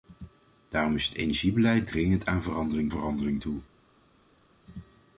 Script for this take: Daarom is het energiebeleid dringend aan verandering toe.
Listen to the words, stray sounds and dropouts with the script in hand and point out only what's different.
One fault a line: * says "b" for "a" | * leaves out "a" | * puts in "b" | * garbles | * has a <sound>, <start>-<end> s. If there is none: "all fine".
* puts in "verandering"